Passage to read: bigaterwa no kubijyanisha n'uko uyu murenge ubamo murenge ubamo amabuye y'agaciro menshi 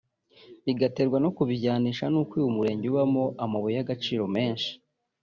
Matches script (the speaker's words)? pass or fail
fail